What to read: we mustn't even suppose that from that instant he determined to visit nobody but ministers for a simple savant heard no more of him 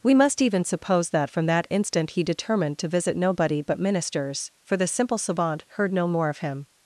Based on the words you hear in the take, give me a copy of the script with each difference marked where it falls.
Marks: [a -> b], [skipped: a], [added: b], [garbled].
we [mustn't -> must] even suppose that from that instant he determined to visit nobody but ministers for [a -> the] simple savant heard no more of him